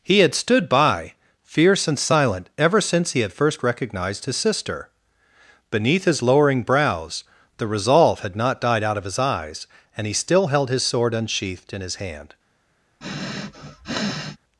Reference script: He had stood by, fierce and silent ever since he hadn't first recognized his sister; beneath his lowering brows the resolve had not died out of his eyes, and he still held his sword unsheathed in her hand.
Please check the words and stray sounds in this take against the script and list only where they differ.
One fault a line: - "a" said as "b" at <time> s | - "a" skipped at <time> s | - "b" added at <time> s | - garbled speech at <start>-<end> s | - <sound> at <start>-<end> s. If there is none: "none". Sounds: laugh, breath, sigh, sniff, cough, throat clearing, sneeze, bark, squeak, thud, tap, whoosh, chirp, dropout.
- "hadn't" said as "had" at 3.2 s
- "her" said as "his" at 11.8 s
- sniff at 13.0-14.4 s